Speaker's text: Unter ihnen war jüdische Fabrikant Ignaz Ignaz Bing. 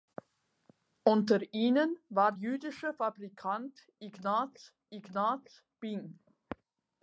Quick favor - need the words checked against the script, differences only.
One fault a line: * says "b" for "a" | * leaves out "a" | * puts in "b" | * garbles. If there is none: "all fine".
all fine